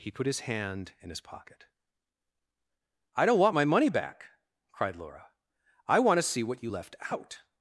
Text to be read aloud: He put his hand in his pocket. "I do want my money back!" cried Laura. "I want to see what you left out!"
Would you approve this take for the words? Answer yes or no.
no